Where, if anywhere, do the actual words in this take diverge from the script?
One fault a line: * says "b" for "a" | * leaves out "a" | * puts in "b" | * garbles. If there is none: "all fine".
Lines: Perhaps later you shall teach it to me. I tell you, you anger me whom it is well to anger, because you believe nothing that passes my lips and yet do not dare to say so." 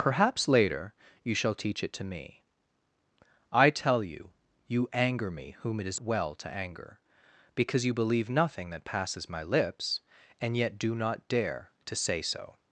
all fine